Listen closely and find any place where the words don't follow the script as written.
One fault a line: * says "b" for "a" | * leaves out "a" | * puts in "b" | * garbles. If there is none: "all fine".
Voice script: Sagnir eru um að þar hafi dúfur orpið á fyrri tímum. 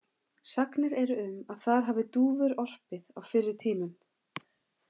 all fine